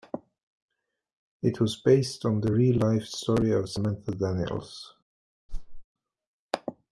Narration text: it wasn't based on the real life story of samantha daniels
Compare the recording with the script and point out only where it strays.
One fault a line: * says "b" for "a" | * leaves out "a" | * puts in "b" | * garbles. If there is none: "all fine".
* says "was" for "wasn't"